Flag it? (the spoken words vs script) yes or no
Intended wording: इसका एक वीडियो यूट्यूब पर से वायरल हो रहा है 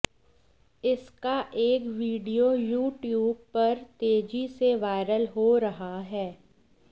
yes